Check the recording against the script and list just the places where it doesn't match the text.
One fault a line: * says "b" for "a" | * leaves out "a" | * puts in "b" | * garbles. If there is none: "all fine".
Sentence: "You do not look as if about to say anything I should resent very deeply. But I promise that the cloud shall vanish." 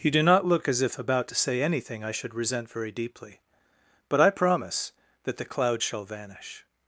all fine